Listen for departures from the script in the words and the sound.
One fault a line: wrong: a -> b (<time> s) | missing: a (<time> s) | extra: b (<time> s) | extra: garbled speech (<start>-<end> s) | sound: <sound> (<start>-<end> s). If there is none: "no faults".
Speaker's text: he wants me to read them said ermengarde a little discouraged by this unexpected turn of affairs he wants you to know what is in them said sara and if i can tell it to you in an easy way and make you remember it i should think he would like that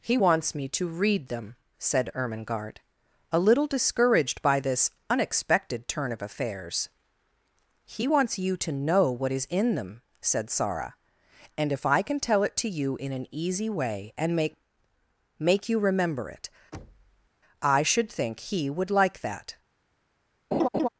extra: make (15.4 s)
sound: thud (16.7-17.3 s)
sound: laugh (20.5-20.9 s)